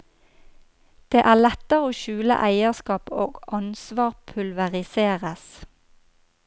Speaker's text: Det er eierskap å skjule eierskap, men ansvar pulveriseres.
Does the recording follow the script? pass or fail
fail